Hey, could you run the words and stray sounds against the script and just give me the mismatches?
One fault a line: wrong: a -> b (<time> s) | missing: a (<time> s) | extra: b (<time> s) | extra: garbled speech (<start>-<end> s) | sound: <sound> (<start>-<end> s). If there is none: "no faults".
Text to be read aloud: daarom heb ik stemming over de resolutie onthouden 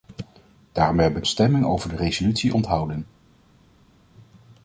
no faults